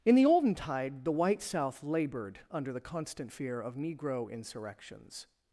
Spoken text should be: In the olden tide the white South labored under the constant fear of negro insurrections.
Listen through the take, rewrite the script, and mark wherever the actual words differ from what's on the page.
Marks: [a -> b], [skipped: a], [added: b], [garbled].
In the olden tide the white South labored under the constant fear of negro insurrections.